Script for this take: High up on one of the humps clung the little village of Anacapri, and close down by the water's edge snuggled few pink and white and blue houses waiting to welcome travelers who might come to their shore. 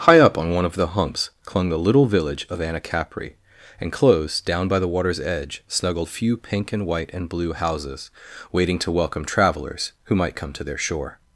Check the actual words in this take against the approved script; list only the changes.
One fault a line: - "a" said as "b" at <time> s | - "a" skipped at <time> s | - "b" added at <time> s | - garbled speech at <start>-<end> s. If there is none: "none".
none